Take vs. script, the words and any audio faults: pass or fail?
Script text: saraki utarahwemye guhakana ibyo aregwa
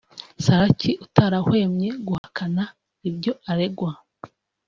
fail